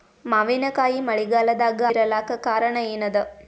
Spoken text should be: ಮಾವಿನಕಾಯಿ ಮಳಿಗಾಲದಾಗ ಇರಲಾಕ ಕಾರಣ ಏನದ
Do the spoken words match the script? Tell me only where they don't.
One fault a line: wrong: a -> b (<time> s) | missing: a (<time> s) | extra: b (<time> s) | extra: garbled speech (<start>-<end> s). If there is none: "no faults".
no faults